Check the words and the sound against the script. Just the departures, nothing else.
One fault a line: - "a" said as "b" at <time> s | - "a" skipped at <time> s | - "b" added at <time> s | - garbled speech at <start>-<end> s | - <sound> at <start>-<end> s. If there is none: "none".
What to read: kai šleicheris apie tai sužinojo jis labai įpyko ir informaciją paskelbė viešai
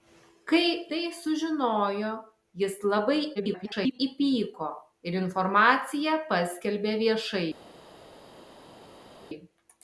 - "šleicheris apie" skipped at 0.7 s
- garbled speech at 3.4-4.0 s